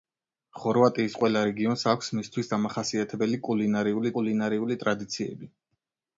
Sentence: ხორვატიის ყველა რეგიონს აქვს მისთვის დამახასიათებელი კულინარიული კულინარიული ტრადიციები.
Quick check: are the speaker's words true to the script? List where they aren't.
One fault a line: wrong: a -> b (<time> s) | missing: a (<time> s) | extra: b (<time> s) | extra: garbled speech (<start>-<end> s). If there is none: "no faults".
no faults